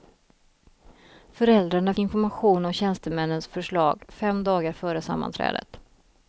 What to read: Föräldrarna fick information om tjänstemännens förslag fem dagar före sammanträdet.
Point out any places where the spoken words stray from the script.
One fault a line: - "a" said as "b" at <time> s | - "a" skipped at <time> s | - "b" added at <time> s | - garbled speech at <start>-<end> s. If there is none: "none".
- "fick" skipped at 1.9 s